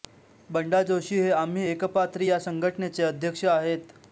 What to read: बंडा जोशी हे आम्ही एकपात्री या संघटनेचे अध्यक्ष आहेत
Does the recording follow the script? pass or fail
pass